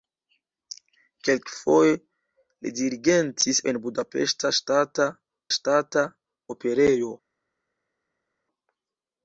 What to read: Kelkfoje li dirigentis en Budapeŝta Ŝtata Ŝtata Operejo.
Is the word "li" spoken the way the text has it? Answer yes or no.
yes